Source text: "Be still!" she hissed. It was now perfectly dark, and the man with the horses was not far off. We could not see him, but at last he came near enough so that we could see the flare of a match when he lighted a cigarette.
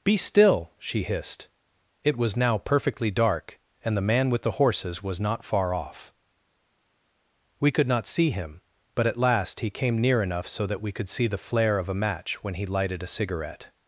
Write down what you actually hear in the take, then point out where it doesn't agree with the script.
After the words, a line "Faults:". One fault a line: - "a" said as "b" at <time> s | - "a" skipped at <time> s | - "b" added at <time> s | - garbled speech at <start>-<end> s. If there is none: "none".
"Be still!" she hissed. It was now perfectly dark, and the man with the horses was not far off. We could not see him, but at last he came near enough so that we could see the flare of a match when he lighted a cigarette.
Faults:
none